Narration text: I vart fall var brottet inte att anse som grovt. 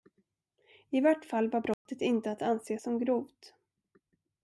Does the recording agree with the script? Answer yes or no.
yes